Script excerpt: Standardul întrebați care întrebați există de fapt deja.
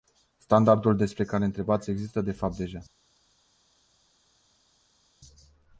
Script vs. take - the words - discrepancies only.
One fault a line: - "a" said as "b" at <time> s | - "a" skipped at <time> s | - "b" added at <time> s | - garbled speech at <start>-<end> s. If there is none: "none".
- "întrebați" said as "despre" at 0.9 s